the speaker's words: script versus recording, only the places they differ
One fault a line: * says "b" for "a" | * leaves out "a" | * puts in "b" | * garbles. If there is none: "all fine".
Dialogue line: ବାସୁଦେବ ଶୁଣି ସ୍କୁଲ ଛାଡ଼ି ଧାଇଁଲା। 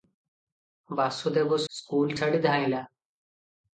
* leaves out "ଶୁଣି"